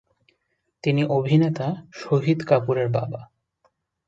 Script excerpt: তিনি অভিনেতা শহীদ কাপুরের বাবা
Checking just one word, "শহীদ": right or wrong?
right